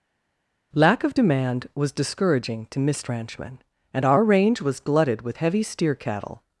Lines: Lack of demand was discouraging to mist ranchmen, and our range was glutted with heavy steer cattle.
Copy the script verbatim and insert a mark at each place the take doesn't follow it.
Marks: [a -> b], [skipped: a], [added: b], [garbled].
Lack of demand was discouraging to mist ranchmen, and our range was glutted with heavy steer cattle.